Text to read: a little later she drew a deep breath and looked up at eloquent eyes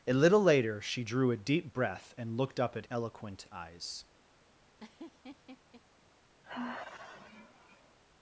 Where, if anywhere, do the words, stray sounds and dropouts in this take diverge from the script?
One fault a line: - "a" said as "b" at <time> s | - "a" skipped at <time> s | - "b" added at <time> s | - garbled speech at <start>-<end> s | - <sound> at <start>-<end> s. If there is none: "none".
- laugh at 4.8-5.8 s
- sigh at 6.4-8.0 s